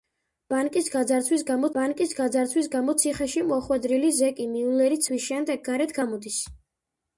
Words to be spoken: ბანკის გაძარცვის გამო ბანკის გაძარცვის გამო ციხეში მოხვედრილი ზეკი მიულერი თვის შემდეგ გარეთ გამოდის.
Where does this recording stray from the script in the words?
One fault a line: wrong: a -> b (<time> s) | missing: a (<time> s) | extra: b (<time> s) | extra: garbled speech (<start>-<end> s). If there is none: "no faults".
no faults